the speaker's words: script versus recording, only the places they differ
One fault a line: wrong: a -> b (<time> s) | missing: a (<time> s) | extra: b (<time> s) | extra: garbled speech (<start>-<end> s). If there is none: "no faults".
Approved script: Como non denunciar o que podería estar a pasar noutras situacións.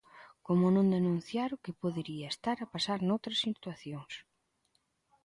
no faults